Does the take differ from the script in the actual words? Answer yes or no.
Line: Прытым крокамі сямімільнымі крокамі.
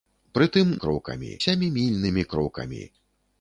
no